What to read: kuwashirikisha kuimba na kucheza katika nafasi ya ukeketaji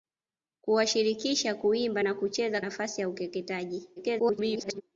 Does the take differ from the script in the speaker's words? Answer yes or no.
yes